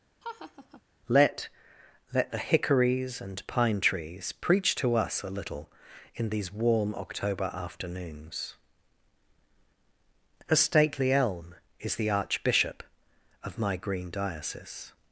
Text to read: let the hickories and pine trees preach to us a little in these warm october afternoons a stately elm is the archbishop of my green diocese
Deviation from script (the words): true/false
true